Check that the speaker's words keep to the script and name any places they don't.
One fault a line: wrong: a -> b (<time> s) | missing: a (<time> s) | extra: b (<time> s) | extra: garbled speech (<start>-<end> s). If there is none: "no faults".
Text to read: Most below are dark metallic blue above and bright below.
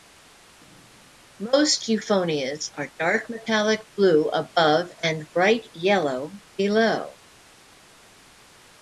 wrong: below -> euphonias (1.9 s)
extra: yellow (5.7 s)